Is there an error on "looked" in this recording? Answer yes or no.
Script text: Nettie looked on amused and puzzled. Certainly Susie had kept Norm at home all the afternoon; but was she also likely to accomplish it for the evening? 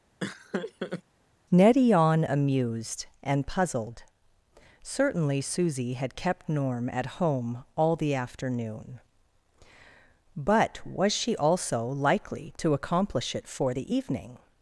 yes